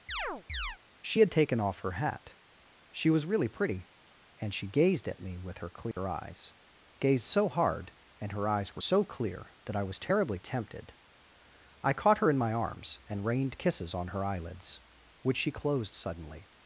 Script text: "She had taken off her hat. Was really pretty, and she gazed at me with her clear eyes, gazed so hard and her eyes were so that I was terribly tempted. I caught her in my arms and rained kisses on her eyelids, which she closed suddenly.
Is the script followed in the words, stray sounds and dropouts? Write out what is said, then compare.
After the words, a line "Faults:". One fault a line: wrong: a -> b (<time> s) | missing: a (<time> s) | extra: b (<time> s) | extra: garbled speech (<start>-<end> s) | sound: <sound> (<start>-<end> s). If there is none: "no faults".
"She had taken off her hat. She was really pretty, and she gazed at me with her clear eyes, gazed so hard and her eyes were so clear that I was terribly tempted. I caught her in my arms and rained kisses on her eyelids, which she closed suddenly.
Faults:
sound: chirp (0.1-0.8 s)
extra: She (2.9 s)
sound: dropout (5.9-6.0 s)
extra: clear (9.0 s)